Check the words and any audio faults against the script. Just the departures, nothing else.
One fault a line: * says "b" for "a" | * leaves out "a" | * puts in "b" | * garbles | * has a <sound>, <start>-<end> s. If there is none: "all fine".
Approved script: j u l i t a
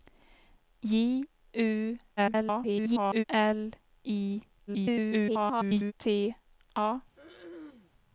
* garbles
* garbles
* has a throat clearing, 7.2-7.9 s